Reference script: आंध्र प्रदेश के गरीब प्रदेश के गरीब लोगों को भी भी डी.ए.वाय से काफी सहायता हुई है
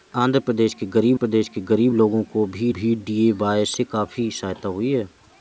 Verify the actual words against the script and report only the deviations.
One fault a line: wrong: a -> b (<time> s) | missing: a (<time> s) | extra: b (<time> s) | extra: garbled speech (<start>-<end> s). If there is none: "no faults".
no faults